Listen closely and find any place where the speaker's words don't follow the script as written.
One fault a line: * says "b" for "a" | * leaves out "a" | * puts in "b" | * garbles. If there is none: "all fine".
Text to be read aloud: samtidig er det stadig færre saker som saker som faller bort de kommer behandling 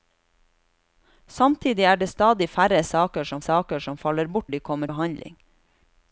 all fine